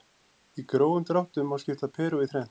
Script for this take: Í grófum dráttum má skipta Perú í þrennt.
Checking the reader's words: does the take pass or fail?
pass